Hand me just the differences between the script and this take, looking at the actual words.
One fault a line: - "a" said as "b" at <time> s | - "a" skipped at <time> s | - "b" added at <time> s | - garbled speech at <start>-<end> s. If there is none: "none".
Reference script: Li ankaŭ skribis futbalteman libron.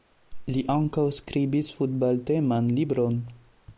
none